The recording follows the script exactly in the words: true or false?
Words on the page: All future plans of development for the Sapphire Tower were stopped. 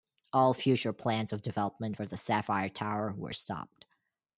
true